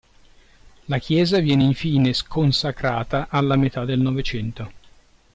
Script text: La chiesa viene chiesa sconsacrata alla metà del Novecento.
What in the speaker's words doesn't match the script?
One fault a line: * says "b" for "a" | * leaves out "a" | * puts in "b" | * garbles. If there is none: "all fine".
* says "infine" for "chiesa"